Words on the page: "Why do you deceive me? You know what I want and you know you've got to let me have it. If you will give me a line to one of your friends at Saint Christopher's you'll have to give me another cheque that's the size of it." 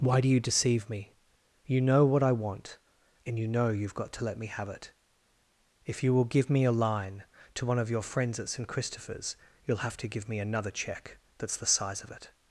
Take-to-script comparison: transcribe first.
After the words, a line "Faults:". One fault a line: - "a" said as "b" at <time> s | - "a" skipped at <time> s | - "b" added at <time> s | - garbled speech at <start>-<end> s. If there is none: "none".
"Why do you deceive me? You know what I want and you know you've got to let me have it. If you will give me a line to one of your friends at Saint Christopher's you'll have to give me another cheque that's the size of it."
Faults:
none